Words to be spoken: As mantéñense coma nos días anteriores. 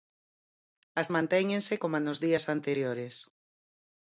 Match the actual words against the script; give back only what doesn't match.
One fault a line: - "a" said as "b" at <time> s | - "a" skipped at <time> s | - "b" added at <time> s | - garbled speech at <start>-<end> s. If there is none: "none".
none